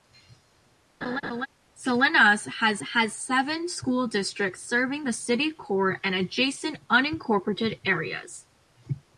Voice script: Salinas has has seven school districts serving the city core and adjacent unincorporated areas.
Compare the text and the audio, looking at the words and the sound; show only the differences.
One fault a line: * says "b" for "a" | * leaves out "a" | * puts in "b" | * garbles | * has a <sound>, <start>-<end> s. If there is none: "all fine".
* has a laugh, 1.0-1.5 s